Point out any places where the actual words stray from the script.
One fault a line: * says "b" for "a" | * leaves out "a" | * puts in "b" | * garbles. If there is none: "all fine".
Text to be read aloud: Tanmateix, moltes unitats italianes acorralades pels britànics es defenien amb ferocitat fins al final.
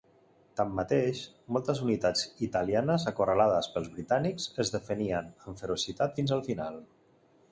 all fine